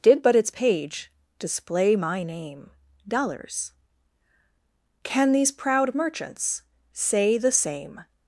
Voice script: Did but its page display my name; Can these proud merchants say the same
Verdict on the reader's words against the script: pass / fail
fail